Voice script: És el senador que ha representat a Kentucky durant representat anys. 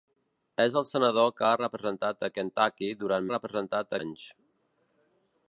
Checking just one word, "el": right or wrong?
right